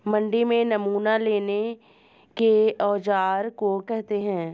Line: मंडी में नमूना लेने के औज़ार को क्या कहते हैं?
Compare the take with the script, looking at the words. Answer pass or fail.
fail